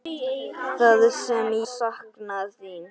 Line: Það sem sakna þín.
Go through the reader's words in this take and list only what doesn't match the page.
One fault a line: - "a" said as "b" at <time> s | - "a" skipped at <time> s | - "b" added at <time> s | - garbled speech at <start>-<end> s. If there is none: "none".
none